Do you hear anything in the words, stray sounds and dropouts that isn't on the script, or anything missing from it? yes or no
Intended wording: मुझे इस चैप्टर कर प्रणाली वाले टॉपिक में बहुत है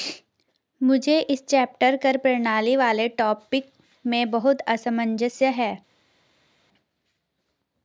yes